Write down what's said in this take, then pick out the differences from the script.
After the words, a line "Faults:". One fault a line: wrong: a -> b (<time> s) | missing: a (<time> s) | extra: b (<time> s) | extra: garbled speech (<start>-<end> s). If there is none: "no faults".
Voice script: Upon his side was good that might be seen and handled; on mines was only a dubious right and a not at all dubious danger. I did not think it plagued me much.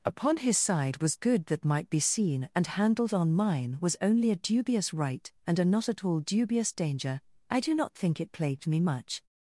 Upon his side was good that might be seen and handled; on mine was only a dubious right and a not at all dubious danger. I do not think it plagued me much.
Faults:
wrong: mines -> mine (3.3 s)
wrong: did -> do (7.6 s)